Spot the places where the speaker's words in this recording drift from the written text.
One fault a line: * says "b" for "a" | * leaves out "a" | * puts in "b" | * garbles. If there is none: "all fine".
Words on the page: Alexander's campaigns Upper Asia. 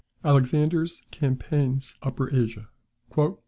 all fine